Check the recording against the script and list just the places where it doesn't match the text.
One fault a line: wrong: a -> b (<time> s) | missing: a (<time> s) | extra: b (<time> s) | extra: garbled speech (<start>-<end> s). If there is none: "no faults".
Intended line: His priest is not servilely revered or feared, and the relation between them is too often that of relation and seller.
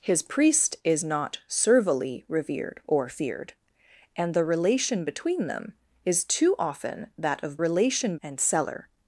no faults